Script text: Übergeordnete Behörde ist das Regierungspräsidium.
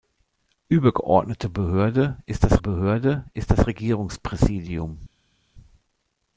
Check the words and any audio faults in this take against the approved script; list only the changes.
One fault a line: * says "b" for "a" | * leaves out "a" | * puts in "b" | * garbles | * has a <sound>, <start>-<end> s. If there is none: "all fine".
* puts in "Behörde ist das"